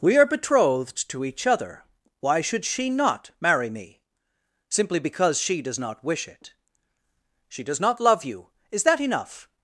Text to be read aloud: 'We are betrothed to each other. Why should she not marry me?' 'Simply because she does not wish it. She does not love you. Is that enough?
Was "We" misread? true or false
false